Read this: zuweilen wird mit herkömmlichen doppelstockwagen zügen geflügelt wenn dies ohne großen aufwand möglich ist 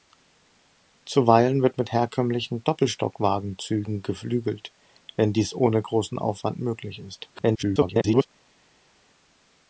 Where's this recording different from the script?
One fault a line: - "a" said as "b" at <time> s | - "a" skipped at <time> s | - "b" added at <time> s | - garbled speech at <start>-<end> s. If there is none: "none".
- garbled speech at 7.3-8.3 s